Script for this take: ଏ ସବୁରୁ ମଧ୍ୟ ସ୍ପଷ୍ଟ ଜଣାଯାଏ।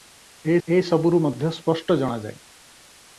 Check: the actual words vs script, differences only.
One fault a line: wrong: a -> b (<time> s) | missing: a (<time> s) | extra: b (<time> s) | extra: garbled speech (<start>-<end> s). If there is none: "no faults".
extra: ଏ (0.7 s)